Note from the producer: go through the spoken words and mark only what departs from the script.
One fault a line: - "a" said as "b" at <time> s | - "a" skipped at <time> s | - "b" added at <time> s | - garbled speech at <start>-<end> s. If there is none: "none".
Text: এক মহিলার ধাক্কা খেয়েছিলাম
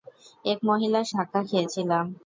none